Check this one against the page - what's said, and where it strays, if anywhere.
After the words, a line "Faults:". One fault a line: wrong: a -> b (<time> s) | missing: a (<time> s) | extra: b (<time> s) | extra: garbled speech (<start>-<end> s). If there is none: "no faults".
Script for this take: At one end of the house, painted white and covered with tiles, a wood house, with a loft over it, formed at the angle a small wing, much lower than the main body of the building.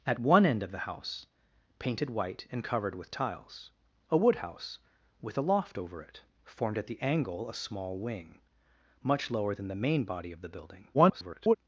At one end of the house, painted white and covered with tiles, a wood house, with a loft over it, formed at the angle a small wing, much lower than the main body of the building. [garbled]
Faults:
extra: garbled speech (10.9-11.6 s)